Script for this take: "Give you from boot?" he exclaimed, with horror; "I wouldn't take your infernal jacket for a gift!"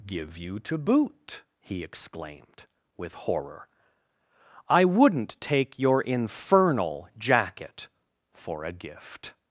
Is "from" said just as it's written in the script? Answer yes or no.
no